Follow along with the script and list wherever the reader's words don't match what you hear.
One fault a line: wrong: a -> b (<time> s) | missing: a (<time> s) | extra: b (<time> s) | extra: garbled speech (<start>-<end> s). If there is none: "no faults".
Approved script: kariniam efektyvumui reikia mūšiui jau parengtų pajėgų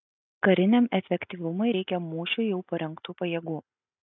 no faults